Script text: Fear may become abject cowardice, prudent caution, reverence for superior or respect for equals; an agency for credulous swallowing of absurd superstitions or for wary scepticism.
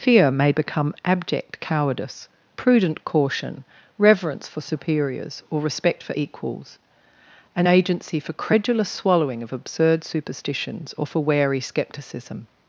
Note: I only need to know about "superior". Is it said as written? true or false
false